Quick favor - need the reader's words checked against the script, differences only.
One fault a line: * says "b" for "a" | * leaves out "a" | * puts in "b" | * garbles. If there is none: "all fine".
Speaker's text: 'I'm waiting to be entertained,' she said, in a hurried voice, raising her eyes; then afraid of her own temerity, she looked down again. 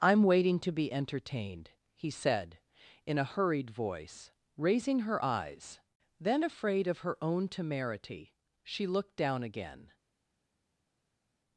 * says "he" for "she"